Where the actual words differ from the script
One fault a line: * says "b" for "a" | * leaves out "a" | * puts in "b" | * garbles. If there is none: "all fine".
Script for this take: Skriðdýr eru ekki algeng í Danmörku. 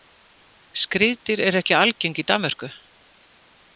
all fine